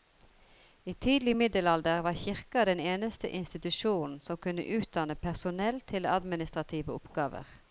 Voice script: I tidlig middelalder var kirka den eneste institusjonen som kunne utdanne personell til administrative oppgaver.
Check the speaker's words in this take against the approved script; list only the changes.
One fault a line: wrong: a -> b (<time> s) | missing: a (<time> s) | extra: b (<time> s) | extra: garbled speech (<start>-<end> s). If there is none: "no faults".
no faults